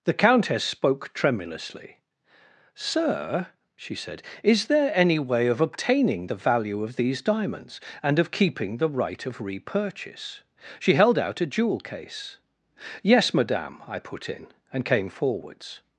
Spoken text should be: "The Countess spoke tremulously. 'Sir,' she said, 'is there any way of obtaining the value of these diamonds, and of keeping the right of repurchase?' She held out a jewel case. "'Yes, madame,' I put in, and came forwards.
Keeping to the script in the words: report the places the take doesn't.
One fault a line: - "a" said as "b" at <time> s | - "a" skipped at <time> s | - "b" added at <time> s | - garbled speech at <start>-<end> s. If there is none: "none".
none